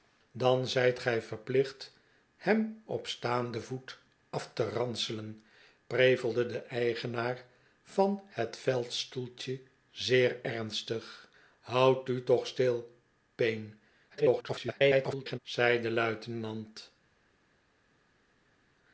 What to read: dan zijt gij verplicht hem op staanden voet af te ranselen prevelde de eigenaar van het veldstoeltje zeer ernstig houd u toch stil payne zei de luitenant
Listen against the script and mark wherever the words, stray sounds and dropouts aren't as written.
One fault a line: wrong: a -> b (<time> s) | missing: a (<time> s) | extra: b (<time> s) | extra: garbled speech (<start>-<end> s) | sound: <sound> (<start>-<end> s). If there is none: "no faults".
extra: garbled speech (14.1-15.4 s)